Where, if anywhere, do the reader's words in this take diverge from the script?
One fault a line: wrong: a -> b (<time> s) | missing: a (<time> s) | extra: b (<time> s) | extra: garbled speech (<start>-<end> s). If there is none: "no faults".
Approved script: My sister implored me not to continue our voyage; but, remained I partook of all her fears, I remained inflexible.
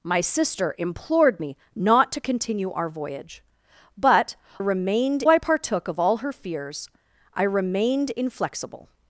no faults